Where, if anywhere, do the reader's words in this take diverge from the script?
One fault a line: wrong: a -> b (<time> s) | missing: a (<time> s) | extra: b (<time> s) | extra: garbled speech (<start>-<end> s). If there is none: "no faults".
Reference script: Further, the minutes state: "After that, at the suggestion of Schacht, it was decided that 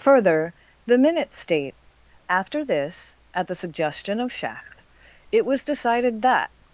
wrong: that -> this (2.6 s)